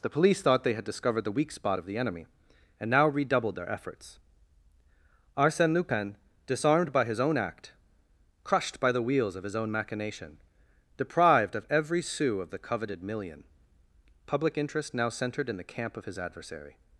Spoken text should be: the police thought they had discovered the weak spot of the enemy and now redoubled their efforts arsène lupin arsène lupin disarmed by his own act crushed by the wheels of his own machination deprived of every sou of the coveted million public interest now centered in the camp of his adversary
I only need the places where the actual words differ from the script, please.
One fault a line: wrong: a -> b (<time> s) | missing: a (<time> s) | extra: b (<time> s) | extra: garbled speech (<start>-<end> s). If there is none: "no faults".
missing: arsène lupin (6.2 s)